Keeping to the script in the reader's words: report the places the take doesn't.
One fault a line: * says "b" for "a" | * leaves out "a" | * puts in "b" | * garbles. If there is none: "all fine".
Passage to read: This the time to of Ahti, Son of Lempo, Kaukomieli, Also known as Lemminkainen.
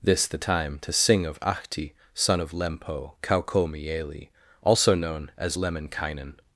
* puts in "sing"